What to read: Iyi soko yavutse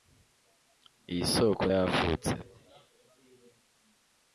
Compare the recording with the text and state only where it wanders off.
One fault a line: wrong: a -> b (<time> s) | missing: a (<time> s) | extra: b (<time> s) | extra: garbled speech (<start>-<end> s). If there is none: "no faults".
no faults